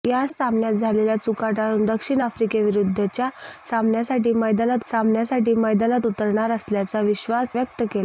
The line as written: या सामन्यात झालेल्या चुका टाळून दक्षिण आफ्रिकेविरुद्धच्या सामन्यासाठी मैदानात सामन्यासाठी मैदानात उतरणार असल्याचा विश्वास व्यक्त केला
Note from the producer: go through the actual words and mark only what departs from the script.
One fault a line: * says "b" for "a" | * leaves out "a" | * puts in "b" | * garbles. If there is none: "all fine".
all fine